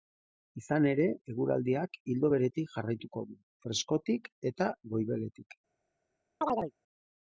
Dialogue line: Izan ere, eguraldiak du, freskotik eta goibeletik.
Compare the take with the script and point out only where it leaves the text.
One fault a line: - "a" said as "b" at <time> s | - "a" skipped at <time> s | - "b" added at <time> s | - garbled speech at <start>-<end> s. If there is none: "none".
- "ildo beretik jarraituko" added at 2.1 s